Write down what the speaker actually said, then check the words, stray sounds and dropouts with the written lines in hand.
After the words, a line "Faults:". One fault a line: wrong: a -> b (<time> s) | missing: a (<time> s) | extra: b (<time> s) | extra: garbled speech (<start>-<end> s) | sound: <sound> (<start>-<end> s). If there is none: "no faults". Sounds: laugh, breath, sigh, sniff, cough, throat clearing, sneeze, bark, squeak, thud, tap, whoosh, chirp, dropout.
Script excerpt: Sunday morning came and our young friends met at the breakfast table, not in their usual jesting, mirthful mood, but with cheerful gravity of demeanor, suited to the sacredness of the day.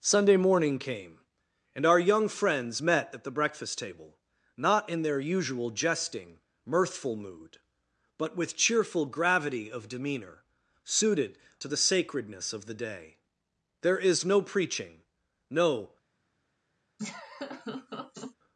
Sunday morning came and our young friends met at the breakfast table, not in their usual jesting, mirthful mood, but with cheerful gravity of demeanor, suited to the sacredness of the day. "There is no preaching, no
Faults:
extra: There is no preaching no (13.8 s)
sound: laugh (17.0-18.4 s)